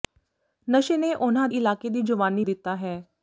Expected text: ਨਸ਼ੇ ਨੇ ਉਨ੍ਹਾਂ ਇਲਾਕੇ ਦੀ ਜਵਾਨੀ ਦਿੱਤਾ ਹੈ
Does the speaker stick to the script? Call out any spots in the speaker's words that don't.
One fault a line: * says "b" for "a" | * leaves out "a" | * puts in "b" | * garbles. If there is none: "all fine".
all fine